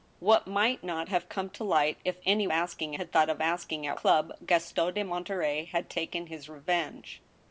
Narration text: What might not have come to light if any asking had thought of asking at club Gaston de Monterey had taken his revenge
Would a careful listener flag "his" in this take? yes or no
no